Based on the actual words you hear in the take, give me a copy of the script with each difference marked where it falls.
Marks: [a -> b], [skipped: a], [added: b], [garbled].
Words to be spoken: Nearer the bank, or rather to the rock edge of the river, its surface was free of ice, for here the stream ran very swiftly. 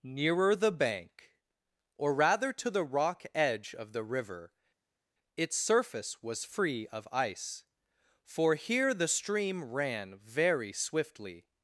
Nearer the bank, or rather to the rock edge of the river, its surface was free of ice, for here the stream ran very swiftly.